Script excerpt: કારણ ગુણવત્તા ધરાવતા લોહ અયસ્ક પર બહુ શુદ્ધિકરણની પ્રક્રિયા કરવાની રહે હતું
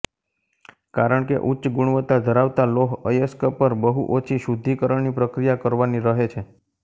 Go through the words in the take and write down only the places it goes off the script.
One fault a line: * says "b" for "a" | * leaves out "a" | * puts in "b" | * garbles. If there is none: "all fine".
* puts in "કે ઉચ્ચ"
* puts in "ઓછી"
* says "છે" for "હતું"